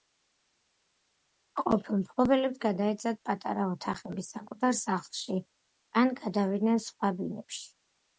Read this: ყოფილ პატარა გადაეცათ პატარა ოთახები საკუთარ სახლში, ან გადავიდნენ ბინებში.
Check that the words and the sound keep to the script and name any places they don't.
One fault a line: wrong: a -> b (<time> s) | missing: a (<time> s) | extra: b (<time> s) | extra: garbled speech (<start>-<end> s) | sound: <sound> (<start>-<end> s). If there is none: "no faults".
wrong: პატარა -> მფლობელებს (2.0 s)
extra: სხვა (6.9 s)